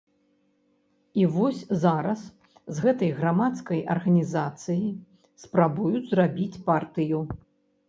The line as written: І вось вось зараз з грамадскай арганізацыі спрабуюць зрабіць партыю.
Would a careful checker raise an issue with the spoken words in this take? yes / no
yes